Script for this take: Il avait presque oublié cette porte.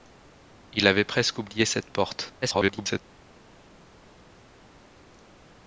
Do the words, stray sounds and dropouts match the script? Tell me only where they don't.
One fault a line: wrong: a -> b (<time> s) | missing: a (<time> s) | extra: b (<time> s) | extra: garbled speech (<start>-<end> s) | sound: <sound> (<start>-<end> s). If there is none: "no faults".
extra: garbled speech (2.4-3.0 s)